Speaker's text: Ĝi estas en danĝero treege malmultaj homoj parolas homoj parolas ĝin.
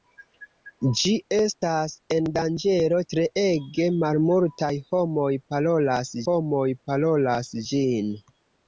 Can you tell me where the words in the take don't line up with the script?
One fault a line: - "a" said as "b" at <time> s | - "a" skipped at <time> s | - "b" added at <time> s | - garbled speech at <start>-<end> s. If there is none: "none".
none